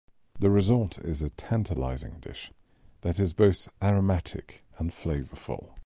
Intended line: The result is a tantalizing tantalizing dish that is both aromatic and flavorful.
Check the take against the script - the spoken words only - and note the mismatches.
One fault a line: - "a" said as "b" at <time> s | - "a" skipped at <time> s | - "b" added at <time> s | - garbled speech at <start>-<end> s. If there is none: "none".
- "tantalizing" skipped at 2.2 s